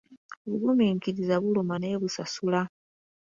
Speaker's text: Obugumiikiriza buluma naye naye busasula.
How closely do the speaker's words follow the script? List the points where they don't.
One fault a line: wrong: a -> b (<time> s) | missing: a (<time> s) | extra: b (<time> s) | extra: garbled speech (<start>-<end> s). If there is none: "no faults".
missing: naye (2.0 s)